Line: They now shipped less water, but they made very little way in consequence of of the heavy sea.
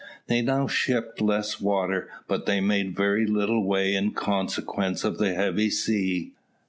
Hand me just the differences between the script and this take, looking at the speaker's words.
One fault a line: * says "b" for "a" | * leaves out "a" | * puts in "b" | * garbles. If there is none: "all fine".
* leaves out "of"